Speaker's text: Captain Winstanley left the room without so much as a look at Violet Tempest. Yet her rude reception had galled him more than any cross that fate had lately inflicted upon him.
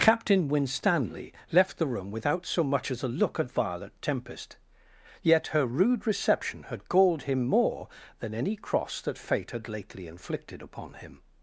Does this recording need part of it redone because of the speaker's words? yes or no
no